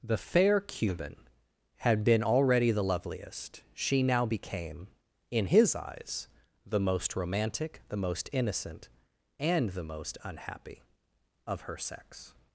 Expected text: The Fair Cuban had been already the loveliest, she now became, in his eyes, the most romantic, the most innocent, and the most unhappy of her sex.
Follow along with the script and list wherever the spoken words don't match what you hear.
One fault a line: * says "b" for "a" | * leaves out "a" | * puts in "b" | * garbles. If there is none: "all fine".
all fine